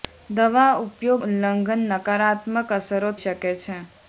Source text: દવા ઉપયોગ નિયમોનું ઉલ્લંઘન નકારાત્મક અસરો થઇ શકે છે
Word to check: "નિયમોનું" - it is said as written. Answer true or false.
false